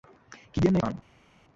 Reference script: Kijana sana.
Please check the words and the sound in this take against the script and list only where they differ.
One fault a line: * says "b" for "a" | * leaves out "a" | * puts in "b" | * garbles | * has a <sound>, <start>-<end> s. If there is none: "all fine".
all fine